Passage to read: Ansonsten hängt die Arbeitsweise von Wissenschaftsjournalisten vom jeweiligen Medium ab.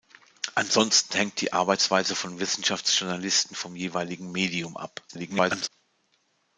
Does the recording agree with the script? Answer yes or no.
no